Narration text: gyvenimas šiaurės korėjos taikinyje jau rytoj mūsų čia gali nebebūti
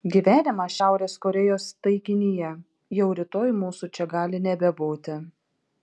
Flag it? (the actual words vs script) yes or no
no